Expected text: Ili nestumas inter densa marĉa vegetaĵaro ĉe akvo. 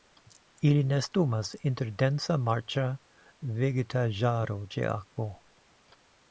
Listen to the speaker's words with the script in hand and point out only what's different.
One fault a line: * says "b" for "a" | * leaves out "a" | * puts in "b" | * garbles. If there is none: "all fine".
all fine